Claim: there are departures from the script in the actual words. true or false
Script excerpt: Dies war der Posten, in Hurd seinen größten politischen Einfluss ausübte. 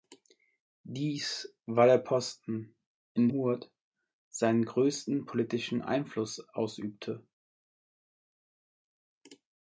false